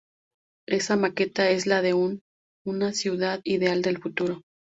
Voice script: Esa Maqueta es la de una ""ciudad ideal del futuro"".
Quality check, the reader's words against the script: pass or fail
pass